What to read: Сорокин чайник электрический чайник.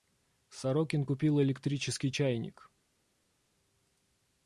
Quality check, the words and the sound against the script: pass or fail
fail